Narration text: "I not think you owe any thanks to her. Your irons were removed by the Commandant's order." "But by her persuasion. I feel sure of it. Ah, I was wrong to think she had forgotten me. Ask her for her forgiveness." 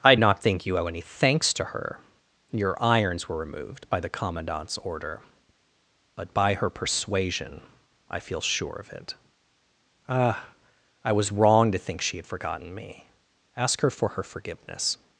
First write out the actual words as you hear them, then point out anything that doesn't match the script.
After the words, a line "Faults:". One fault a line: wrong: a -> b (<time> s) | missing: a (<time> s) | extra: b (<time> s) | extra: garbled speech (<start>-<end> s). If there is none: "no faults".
"I not think you owe any thanks to her. Your irons were removed by the Commandant's order." "But by her persuasion. I feel sure of it. Ah, I was wrong to think she had forgotten me. Ask her for her forgiveness."
Faults:
no faults